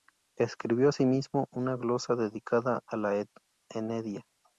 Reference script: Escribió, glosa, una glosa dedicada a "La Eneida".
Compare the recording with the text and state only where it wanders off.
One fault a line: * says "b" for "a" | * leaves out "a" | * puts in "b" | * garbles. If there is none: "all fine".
* says "asimismo" for "glosa"